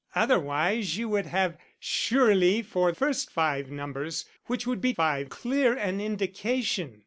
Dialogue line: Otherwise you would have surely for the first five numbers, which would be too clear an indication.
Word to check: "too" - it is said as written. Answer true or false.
false